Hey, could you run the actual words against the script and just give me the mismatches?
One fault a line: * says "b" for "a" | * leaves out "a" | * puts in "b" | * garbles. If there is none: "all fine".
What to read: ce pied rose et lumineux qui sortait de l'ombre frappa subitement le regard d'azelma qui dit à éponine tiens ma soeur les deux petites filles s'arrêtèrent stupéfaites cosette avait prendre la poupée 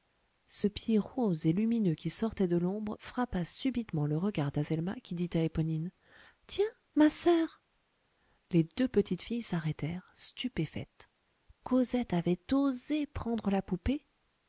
* puts in "osé"